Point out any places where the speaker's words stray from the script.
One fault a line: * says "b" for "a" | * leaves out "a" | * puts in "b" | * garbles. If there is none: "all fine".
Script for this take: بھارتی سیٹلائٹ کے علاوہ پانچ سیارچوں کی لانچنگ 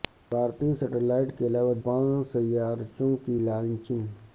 all fine